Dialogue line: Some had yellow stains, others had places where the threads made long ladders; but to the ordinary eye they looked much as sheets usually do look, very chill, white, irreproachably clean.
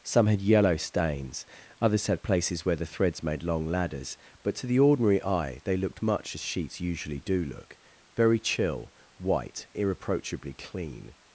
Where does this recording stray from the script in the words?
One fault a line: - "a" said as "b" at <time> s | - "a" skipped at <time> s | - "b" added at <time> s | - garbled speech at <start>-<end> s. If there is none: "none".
none